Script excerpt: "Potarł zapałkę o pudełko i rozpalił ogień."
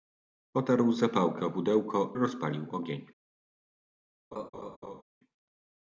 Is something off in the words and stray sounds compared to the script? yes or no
yes